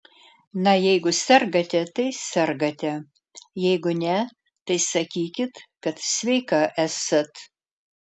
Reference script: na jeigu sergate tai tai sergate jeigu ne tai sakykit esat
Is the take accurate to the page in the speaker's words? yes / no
no